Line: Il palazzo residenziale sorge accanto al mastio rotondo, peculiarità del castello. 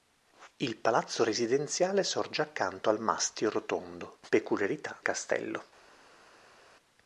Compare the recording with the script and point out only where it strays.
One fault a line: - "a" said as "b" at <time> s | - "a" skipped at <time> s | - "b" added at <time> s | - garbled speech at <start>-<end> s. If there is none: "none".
- "del" skipped at 5.0 s